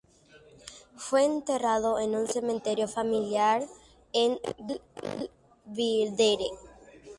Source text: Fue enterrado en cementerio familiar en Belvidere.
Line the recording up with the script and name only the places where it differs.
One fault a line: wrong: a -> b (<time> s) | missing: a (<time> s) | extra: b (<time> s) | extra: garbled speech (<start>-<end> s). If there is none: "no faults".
extra: un (2.1 s)